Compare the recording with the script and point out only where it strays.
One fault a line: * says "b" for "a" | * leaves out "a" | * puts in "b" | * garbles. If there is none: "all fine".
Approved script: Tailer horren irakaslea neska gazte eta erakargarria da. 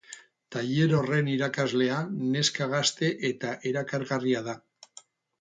all fine